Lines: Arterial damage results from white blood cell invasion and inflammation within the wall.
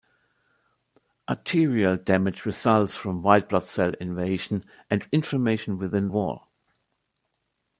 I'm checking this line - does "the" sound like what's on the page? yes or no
no